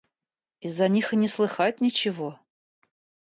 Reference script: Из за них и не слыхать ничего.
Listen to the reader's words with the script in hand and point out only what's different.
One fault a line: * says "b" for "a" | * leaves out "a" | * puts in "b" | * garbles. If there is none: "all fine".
all fine